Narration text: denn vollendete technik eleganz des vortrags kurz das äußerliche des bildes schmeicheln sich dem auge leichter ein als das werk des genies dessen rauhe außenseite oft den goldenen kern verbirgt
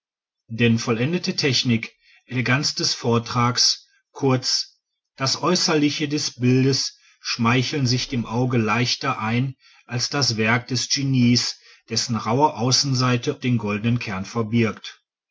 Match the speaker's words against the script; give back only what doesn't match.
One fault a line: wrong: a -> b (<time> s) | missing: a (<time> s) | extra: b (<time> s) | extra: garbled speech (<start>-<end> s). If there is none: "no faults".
missing: oft (13.4 s)